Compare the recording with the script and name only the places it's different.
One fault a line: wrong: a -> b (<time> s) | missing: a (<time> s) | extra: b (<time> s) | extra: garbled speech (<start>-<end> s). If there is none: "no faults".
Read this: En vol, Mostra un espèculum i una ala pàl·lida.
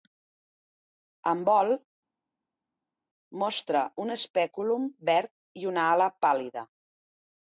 extra: verd (5.1 s)